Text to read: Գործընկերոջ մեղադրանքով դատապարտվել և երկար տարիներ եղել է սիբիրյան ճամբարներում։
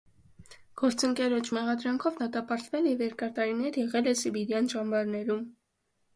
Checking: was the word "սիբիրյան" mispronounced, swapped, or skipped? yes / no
no